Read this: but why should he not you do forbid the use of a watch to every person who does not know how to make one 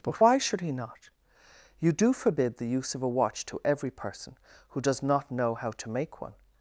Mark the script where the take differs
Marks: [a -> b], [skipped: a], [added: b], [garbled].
but why should he not you do forbid the use of a watch to every person who does not know how to make one